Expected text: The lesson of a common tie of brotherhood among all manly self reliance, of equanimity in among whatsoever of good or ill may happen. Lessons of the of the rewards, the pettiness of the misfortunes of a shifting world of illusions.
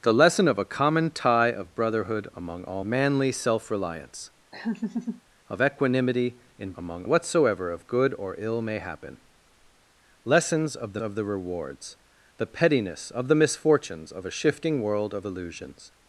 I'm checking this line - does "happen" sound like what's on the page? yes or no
yes